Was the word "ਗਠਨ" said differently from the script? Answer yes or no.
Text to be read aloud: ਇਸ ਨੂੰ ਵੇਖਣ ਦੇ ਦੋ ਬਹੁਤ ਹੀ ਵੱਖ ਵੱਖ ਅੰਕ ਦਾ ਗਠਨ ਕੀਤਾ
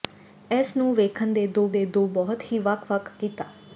yes